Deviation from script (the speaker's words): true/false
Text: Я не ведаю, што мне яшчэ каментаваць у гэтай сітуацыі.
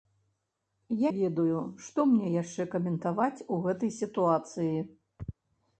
true